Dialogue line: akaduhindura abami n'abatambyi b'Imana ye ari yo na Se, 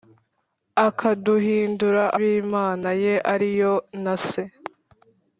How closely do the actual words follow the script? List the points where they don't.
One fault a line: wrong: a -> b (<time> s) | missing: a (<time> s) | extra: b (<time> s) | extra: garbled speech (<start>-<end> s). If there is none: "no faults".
missing: abami n'abatambyi (2.0 s)